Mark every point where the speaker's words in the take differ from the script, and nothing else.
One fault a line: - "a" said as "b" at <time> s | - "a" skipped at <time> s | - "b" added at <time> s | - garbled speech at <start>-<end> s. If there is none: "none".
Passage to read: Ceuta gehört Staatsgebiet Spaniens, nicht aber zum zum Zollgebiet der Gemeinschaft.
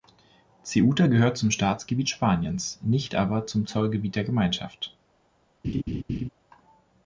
- "zum" added at 1.4 s
- "zum" skipped at 3.7 s